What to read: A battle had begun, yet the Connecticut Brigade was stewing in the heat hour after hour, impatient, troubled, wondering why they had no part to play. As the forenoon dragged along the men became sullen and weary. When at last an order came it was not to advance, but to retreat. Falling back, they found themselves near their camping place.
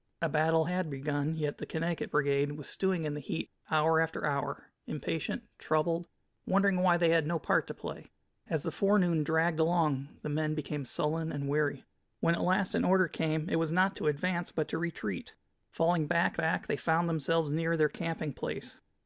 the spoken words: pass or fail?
fail